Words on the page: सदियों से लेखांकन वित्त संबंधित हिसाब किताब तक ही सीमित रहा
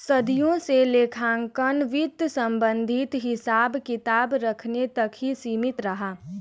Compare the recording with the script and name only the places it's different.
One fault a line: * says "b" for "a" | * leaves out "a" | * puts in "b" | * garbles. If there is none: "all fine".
* puts in "रखने"